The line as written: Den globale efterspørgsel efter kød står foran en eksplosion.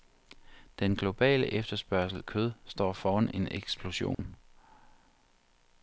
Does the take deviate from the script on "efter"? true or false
true